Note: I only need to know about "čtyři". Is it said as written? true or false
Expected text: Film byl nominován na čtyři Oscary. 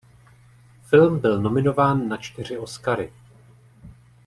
true